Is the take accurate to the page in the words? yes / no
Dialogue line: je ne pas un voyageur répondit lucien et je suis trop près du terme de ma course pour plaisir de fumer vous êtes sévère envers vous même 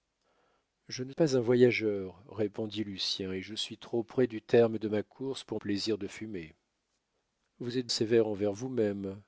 yes